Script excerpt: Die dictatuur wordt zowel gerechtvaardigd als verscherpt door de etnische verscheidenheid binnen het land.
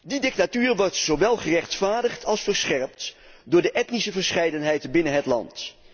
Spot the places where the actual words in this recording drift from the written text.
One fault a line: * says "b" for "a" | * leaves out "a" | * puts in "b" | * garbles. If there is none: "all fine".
all fine